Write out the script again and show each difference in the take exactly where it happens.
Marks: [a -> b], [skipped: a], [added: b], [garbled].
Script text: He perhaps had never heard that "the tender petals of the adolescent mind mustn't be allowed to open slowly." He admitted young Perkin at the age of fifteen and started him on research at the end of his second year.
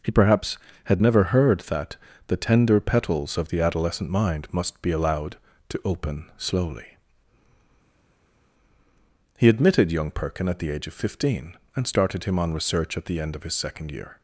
He perhaps had never heard that "the tender petals of the adolescent mind [mustn't -> must] be allowed to open slowly." He admitted young Perkin at the age of fifteen and started him on research at the end of his second year.